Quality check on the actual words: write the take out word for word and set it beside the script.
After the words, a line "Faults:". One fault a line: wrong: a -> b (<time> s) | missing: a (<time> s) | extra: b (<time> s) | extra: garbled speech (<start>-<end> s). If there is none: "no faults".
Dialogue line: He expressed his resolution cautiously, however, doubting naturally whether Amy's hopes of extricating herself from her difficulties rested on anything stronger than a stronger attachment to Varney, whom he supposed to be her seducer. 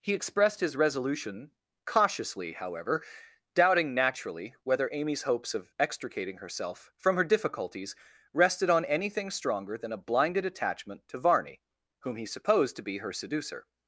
He expressed his resolution cautiously, however, doubting naturally whether Amy's hopes of extricating herself from her difficulties rested on anything stronger than a blinded attachment to Varney, whom he supposed to be her seducer.
Faults:
wrong: stronger -> blinded (10.0 s)